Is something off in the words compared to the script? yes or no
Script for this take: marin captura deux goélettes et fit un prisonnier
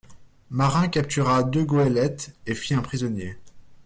no